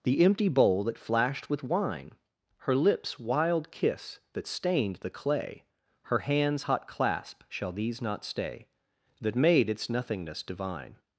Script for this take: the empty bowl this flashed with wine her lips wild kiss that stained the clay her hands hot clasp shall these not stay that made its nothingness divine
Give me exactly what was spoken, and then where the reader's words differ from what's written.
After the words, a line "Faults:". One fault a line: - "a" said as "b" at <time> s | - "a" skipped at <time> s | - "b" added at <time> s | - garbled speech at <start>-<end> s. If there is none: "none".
the empty bowl that flashed with wine her lips wild kiss that stained the clay her hands hot clasp shall these not stay that made its nothingness divine
Faults:
- "this" said as "that" at 0.8 s